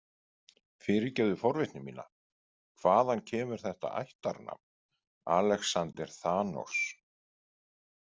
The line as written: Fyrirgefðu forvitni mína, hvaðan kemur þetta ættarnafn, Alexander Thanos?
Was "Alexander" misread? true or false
false